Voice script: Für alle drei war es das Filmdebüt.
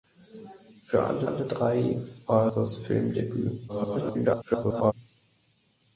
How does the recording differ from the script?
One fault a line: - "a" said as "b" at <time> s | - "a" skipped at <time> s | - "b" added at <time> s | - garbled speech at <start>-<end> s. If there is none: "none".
- "alle" added at 1.2 s
- "es" skipped at 2.5 s
- garbled speech at 3.7-4.9 s